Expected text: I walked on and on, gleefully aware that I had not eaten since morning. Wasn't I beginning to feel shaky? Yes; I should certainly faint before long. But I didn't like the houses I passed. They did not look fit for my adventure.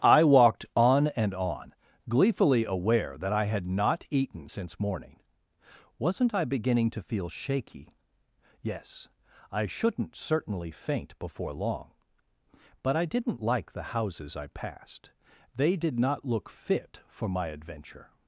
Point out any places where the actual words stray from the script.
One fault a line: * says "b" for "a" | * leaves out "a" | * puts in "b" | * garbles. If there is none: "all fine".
* says "shouldn't" for "should"